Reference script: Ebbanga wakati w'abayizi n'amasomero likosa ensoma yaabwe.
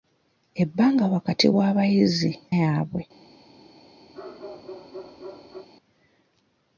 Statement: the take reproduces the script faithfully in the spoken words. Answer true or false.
false